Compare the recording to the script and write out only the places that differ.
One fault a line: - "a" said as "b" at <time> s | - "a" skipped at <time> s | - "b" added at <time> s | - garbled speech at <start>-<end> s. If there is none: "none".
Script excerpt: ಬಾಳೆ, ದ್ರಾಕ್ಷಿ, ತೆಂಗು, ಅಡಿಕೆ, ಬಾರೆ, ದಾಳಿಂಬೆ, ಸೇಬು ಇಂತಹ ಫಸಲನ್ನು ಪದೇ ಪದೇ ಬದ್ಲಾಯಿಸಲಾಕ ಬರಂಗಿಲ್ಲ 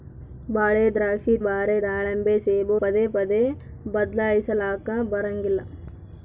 - "ತೆಂಗು ಅಡಿಕೆ" skipped at 1.3 s
- "ಇಂತಹ ಫಸಲನ್ನು" skipped at 2.8 s